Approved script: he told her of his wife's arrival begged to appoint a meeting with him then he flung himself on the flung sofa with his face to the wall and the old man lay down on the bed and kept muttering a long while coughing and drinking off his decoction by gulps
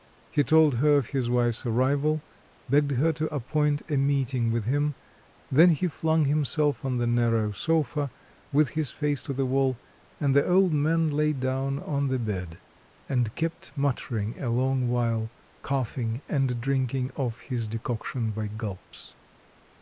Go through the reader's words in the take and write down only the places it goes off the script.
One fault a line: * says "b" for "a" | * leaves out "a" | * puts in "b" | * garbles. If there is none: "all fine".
* puts in "her"
* says "narrow" for "flung"